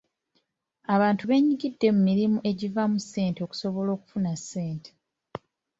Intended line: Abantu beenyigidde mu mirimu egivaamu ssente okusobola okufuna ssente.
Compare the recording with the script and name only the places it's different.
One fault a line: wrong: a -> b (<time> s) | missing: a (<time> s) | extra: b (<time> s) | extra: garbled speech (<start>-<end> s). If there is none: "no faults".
no faults